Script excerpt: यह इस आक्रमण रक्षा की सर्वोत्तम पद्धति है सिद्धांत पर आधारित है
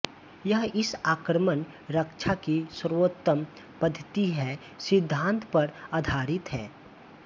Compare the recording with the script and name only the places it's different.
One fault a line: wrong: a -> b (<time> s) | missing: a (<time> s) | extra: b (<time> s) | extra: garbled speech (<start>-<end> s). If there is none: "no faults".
no faults